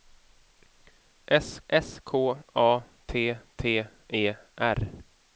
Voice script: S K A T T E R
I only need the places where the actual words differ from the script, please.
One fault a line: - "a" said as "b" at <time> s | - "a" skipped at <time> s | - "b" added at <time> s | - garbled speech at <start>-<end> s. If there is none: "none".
- "s" added at 1.7 s